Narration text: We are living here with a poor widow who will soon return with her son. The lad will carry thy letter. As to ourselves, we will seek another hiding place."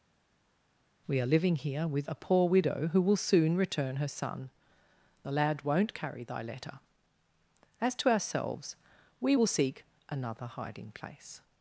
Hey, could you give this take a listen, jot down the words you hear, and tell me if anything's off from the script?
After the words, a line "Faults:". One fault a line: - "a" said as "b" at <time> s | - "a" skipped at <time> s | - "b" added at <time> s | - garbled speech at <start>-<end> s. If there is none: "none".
We are living here with a poor widow who will soon return her son. The lad won't carry thy letter. As to ourselves, we will seek another hiding place."
Faults:
- "with" skipped at 4.0 s
- "will" said as "won't" at 5.6 s